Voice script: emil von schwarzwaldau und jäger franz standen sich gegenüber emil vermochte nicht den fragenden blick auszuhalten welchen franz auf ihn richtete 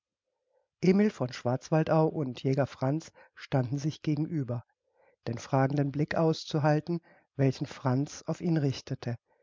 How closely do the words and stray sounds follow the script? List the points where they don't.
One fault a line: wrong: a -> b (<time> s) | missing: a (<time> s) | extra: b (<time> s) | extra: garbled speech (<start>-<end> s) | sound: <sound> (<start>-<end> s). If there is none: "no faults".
missing: emil vermochte nicht (4.6 s)